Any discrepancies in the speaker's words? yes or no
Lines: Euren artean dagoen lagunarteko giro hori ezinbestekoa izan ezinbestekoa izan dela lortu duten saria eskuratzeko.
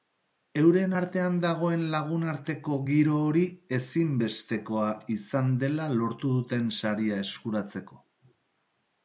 yes